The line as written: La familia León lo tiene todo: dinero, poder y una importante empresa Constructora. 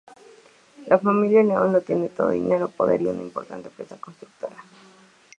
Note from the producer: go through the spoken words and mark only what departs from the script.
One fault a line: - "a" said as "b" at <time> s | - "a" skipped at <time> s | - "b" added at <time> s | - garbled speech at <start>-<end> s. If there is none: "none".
none